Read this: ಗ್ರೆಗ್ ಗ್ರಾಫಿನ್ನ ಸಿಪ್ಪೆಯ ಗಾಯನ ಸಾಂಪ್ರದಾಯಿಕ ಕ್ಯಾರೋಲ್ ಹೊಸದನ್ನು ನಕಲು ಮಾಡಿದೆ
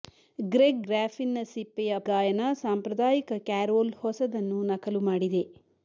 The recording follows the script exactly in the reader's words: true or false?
true